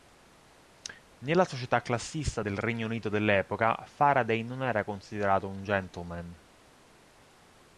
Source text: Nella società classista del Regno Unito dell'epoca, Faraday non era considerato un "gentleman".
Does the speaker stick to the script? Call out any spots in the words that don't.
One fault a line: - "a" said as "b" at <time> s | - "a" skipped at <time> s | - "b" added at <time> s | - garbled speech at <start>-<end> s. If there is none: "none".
none